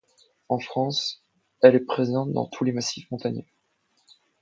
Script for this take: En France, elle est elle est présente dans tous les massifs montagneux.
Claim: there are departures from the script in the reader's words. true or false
true